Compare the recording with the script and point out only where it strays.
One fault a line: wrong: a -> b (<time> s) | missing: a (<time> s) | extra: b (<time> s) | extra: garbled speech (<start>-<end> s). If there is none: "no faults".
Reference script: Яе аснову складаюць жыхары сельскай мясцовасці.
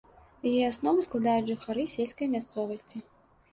no faults